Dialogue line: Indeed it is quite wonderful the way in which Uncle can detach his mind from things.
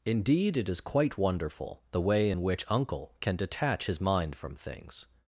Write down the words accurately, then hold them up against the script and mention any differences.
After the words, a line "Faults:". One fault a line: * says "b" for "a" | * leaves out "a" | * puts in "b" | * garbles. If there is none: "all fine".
Indeed it is quite wonderful the way in which Uncle can detach his mind from things.
Faults:
all fine